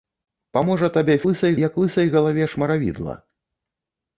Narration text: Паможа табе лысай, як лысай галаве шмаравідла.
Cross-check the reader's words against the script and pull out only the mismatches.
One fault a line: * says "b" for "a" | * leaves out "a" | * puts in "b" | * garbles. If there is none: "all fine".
all fine